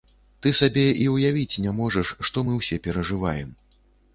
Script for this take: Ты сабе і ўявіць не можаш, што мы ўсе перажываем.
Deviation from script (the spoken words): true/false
false